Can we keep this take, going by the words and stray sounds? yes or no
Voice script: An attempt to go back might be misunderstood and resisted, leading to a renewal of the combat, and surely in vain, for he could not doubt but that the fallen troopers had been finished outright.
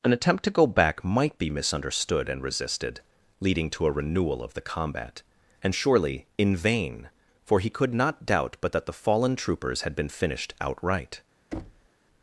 no